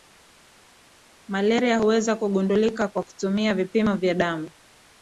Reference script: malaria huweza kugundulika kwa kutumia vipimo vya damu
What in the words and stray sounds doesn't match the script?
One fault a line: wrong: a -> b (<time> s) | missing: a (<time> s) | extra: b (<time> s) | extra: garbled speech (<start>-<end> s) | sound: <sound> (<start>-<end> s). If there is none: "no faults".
no faults